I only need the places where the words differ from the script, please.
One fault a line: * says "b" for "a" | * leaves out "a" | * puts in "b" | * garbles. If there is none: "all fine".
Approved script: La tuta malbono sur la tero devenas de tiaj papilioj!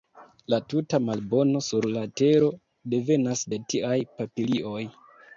all fine